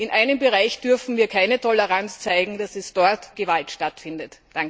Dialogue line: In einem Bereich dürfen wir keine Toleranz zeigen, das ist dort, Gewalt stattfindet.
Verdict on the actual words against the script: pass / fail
pass